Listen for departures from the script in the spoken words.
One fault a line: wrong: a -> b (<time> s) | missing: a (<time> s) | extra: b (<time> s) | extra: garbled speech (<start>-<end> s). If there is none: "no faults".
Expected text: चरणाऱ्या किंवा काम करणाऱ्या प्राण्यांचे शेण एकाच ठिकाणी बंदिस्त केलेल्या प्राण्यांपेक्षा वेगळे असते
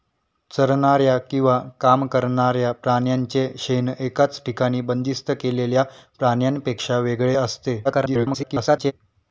extra: garbled speech (7.8-8.9 s)